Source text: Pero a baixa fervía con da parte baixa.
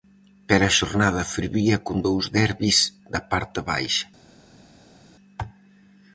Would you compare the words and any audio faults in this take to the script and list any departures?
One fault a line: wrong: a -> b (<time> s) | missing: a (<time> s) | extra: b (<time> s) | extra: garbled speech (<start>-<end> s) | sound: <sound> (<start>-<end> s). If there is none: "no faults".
wrong: baixa -> xornada (0.8 s)
extra: dous derbis (2.1 s)